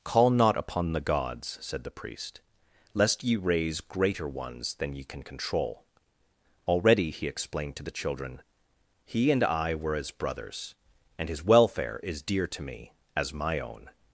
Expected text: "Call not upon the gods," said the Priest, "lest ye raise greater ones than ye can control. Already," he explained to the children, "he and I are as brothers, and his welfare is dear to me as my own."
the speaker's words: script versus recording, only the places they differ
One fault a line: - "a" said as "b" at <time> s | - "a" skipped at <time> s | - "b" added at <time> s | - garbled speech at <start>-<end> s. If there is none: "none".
- "are" said as "were" at 9.8 s